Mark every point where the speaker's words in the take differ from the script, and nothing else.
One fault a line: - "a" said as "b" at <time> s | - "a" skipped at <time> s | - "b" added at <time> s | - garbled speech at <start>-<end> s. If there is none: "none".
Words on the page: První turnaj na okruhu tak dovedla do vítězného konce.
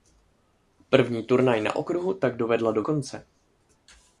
- "vítězného" skipped at 2.8 s